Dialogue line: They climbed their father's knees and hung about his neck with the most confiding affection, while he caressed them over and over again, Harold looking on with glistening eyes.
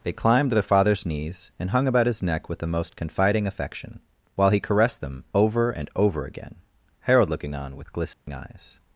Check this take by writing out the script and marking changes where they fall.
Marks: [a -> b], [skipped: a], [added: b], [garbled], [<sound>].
They climbed their father's knees and hung about his neck with the most confiding affection, while he caressed them over and over again, Harold looking on with glistening [dropout] eyes.